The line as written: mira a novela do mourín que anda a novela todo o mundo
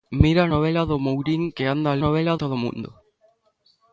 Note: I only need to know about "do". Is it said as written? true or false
true